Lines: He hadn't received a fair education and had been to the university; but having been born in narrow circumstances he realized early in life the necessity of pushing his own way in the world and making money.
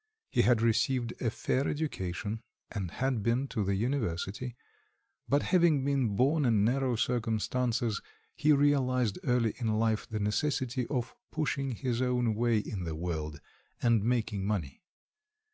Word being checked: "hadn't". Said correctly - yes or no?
no